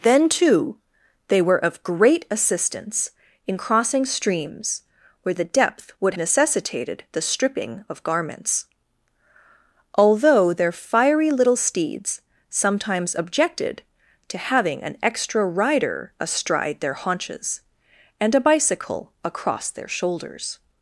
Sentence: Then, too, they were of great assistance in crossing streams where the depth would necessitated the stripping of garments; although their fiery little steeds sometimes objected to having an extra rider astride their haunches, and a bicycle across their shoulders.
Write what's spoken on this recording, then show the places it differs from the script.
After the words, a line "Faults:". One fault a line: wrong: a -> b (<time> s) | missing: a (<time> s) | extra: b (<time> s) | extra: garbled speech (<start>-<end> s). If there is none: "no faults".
Then, too, they were of great assistance in crossing streams where the depth would necessitated the stripping of garments; although their fiery little steeds sometimes objected to having an extra rider astride their haunches, and a bicycle across their shoulders.
Faults:
no faults